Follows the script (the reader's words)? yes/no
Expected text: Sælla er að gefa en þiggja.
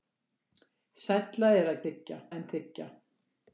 no